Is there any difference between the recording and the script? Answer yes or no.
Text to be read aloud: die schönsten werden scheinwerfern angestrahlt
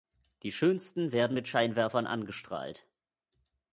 yes